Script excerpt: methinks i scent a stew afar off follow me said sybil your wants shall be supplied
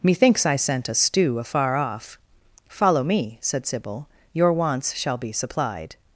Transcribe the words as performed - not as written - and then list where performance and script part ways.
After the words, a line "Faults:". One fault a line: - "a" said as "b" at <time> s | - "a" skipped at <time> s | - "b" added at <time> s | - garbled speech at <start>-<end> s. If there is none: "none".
methinks i scent a stew afar off follow me said sybil your wants shall be supplied
Faults:
none